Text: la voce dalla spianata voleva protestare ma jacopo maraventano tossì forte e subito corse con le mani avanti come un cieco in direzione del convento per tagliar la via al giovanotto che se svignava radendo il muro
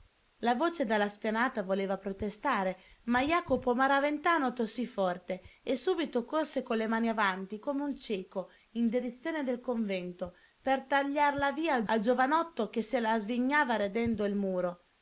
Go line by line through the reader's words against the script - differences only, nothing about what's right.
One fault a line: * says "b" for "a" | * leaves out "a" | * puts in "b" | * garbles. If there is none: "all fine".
* puts in "la"